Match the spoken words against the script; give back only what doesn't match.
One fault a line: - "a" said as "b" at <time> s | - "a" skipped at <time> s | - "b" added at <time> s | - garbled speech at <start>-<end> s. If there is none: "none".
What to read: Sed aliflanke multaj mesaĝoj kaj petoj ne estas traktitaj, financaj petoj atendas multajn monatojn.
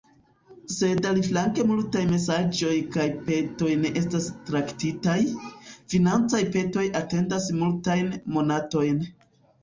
none